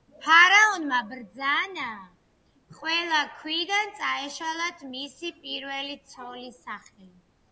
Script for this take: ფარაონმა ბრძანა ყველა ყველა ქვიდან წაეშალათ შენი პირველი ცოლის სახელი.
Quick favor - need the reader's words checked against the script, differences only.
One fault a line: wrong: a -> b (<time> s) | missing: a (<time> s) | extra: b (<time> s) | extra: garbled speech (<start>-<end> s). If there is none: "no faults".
missing: ყველა (3.2 s)
wrong: შენი -> მისი (4.9 s)